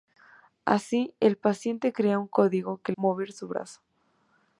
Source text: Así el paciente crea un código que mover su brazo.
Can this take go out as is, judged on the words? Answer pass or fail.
pass